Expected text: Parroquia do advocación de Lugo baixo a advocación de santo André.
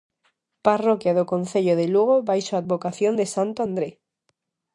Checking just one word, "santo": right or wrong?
right